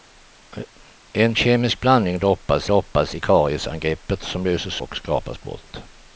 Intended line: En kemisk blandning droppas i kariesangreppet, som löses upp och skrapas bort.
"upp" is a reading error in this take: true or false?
true